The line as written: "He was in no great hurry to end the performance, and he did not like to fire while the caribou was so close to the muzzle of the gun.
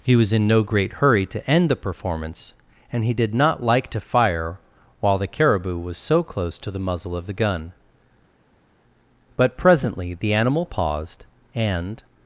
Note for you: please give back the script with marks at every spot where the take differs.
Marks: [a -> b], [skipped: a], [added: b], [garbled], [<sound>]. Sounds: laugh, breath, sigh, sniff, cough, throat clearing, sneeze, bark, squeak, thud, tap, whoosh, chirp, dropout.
"He was in no great hurry to end the performance, and he did not like to fire while the caribou was so close to the muzzle of the gun. [added: But presently the animal paused and]